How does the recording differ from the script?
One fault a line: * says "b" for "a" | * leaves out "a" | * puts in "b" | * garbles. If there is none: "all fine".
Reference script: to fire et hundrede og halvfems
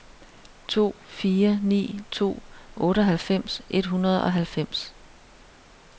* puts in "ni to otteoghalvfems"